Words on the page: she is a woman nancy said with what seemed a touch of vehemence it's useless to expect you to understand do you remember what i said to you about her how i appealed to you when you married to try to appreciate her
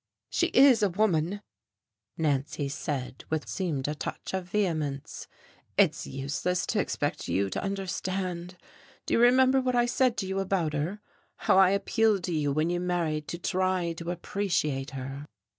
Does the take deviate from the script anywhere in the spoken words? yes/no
yes